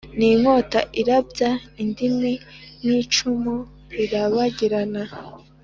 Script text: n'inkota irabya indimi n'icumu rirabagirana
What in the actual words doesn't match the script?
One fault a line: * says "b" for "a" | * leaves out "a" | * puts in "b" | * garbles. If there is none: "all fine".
all fine